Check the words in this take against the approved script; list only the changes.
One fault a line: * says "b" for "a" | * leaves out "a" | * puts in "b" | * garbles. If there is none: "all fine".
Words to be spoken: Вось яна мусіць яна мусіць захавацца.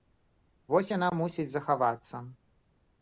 * leaves out "яна мусіць"